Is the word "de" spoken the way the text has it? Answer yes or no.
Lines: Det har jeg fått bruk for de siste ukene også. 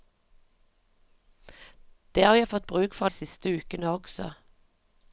no